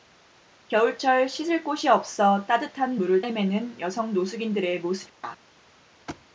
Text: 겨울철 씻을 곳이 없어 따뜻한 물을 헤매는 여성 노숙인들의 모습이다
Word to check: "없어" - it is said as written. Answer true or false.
true